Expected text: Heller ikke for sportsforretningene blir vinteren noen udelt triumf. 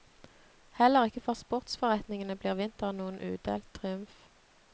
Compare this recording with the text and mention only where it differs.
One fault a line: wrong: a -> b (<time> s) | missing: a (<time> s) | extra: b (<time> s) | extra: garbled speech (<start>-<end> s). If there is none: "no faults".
no faults